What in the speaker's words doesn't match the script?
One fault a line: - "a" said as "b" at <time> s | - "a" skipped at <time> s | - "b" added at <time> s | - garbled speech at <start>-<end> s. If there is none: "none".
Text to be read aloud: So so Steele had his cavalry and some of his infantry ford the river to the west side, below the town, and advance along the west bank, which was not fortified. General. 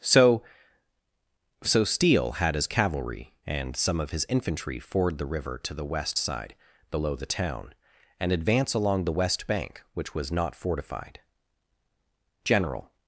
none